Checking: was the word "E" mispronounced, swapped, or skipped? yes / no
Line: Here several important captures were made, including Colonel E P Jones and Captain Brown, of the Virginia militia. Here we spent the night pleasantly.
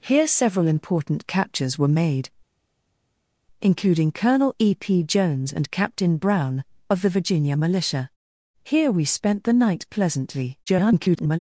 no